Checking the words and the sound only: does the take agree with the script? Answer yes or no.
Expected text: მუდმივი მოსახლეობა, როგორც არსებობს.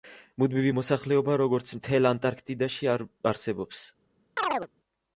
no